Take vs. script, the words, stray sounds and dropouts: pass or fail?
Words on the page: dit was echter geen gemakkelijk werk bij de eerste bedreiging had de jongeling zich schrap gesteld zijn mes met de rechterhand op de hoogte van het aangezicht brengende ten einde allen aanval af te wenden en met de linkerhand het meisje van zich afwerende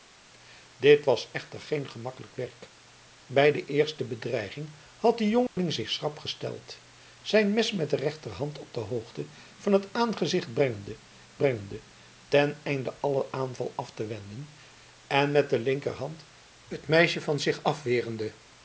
fail